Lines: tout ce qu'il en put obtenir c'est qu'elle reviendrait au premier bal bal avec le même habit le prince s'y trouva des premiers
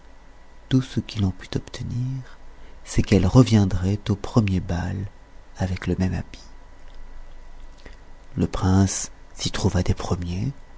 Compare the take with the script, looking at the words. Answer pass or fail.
fail